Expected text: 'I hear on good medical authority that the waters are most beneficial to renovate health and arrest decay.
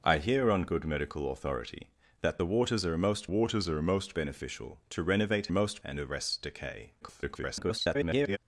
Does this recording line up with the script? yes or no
no